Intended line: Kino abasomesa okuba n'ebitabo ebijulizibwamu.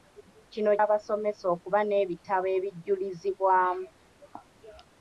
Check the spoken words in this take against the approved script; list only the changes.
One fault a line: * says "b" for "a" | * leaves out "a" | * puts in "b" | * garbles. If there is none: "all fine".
all fine